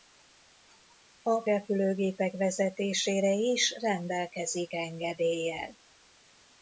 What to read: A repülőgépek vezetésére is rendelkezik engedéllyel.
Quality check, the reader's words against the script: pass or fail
pass